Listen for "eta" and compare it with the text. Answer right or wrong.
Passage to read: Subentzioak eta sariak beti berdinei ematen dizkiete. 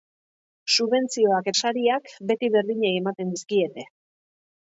wrong